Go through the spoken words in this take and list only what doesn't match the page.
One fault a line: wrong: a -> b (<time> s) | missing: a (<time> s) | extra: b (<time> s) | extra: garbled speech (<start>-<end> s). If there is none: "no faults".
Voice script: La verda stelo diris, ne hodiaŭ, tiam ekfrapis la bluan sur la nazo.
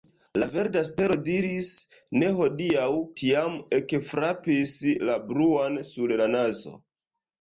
no faults